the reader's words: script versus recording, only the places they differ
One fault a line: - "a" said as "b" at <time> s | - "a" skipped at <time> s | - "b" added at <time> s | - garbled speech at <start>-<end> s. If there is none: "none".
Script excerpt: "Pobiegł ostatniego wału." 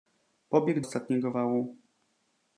none